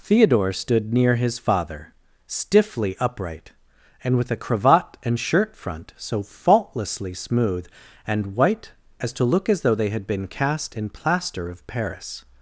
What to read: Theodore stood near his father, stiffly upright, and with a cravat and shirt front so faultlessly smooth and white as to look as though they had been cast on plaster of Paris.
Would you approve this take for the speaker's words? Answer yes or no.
no